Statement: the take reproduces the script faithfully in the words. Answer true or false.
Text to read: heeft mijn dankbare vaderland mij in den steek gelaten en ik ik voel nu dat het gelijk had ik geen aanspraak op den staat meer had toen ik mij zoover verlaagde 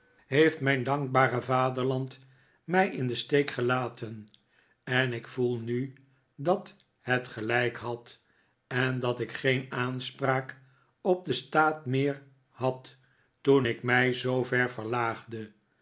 false